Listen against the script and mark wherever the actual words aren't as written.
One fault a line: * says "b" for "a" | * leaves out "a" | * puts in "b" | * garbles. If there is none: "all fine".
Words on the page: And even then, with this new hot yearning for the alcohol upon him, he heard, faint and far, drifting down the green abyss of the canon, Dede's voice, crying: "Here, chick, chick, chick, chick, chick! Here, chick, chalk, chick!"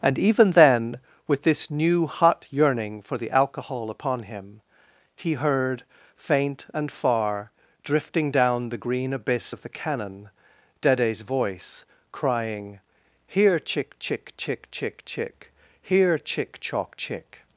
all fine